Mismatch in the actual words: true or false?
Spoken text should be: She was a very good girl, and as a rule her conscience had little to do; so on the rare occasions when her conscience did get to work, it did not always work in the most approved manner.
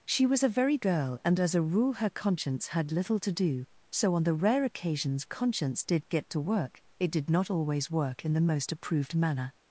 true